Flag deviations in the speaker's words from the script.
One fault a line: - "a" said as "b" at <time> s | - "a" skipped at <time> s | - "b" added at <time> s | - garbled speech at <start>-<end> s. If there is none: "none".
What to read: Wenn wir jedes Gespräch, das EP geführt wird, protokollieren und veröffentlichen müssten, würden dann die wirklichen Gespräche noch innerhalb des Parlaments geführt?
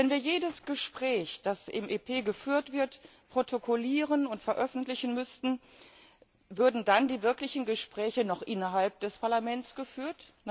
- "im" added at 1.7 s